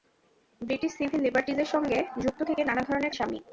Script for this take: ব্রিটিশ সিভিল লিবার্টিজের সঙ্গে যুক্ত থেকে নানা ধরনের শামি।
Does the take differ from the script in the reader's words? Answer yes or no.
no